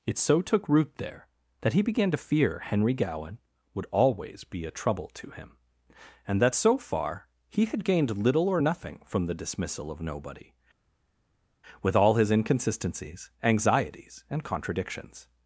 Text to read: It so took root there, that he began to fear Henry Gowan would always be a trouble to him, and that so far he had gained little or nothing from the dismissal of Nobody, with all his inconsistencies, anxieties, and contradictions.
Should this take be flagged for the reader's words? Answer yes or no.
no